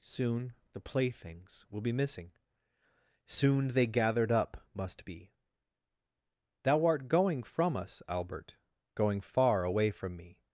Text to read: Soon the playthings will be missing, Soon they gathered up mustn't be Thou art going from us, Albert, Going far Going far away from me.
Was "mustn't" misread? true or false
true